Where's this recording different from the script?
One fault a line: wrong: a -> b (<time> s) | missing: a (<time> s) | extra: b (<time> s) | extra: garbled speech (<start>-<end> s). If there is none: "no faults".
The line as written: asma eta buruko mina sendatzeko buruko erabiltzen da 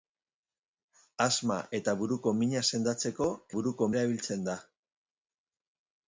no faults